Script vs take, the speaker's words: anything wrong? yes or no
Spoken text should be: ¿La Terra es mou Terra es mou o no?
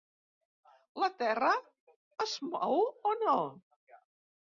yes